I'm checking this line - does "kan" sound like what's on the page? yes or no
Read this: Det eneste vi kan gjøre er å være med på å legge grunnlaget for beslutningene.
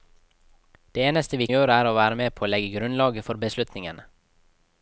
no